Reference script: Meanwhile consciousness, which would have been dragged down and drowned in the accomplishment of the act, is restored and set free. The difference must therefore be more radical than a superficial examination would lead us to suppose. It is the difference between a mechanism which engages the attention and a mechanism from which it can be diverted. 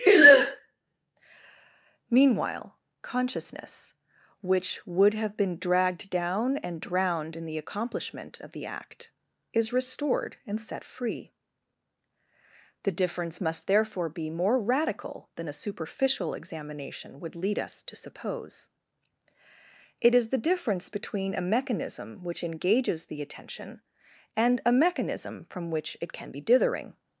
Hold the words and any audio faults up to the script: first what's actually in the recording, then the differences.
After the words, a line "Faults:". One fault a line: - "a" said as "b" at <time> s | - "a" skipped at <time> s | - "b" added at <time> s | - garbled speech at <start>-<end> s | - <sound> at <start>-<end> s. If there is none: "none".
Meanwhile consciousness, which would have been dragged down and drowned in the accomplishment of the act, is restored and set free. The difference must therefore be more radical than a superficial examination would lead us to suppose. It is the difference between a mechanism which engages the attention and a mechanism from which it can be dithering.
Faults:
- "diverted" said as "dithering" at 26.4 s